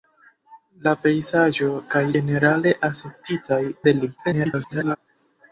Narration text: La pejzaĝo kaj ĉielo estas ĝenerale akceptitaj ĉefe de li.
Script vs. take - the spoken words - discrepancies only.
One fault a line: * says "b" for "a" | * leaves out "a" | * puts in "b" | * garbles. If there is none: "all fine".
* leaves out "ĉielo estas"
* leaves out "ĉefe"
* garbles